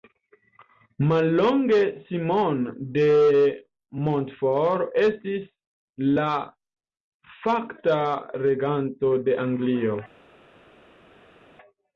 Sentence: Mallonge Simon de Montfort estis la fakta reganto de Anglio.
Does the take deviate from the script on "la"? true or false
false